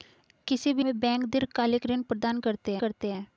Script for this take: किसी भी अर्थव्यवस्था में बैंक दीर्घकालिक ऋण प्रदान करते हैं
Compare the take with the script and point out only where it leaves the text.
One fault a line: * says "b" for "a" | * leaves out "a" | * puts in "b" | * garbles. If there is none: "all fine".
* leaves out "अर्थव्यवस्था"
* puts in "करते"